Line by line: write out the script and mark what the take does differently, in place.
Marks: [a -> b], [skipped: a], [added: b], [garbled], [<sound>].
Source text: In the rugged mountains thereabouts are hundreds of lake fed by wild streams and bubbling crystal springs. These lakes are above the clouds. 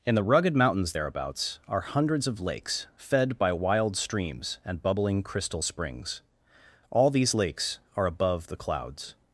In the rugged mountains thereabouts are hundreds of [lake -> lakes] fed by wild streams and bubbling crystal springs. [added: All] These lakes are above the clouds.